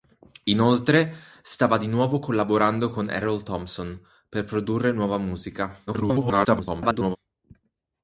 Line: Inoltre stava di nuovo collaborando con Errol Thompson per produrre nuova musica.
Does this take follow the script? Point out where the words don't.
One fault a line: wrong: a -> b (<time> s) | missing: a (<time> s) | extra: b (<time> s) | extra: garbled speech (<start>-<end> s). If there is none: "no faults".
extra: garbled speech (5.9-7.2 s)